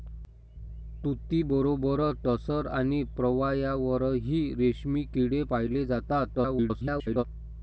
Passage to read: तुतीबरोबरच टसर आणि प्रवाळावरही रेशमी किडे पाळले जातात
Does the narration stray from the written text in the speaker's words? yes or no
yes